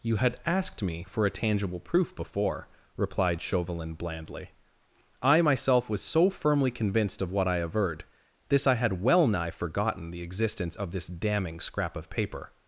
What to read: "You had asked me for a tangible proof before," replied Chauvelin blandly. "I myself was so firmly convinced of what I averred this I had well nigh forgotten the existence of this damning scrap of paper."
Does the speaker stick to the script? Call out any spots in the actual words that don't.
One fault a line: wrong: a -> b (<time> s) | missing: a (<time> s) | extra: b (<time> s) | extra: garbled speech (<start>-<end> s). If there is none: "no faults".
no faults